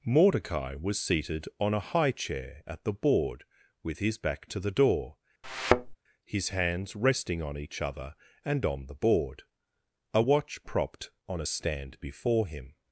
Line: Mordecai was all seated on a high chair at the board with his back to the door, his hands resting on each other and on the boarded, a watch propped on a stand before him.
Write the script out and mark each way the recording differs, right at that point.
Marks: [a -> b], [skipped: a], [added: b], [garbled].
Mordecai was [skipped: all] seated on a high chair at the board with his back to the door, his hands resting on each other and on the [boarded, -> board] a watch propped on a stand before him.